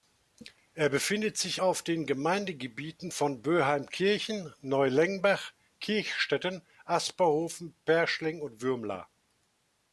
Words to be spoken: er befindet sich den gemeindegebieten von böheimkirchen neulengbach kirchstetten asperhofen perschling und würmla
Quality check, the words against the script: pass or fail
fail